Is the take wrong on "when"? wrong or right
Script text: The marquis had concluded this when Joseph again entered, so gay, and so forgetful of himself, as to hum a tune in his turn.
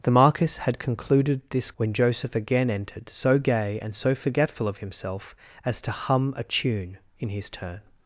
right